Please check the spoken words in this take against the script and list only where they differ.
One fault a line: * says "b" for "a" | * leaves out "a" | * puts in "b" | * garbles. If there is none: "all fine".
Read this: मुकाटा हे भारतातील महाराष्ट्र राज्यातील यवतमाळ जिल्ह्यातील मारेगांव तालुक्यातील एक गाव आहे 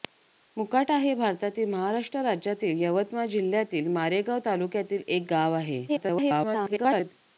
* garbles